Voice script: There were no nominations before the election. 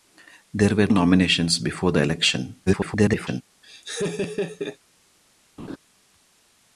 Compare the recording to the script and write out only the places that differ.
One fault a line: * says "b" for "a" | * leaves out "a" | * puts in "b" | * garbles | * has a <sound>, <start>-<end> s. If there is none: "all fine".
* leaves out "no"
* garbles
* has a laugh, 3.6-4.8 s
* has a laugh, 5.6-5.8 s